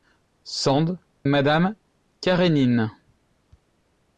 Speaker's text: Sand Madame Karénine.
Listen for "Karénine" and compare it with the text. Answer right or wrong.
right